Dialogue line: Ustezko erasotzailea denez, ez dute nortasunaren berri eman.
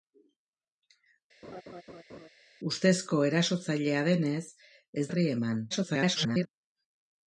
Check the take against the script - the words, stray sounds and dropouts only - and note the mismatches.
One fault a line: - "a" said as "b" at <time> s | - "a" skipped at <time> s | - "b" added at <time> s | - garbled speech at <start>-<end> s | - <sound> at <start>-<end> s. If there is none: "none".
- laugh at 1.4-2.3 s
- "dute nortasunaren" skipped at 5.1 s
- garbled speech at 5.7-6.5 s